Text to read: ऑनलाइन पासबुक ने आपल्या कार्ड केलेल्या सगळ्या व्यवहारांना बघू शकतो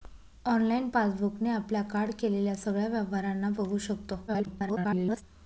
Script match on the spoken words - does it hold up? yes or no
no